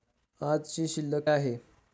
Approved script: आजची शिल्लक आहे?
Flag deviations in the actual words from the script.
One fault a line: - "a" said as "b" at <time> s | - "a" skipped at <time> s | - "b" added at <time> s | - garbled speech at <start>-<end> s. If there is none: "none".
none